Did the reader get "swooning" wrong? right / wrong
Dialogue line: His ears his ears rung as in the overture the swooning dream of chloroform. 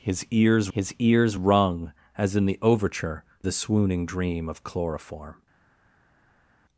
right